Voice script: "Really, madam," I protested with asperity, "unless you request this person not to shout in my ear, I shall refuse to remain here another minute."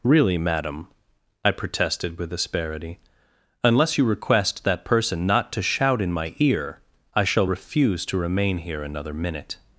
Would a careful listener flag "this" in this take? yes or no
yes